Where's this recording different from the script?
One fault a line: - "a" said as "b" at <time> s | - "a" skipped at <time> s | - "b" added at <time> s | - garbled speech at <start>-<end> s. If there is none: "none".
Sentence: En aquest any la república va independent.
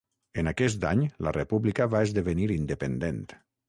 - "esdevenir" added at 2.1 s